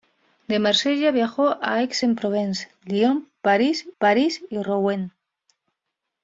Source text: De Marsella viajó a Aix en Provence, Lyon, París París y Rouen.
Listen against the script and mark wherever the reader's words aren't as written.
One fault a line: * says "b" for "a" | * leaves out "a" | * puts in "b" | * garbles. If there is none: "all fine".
all fine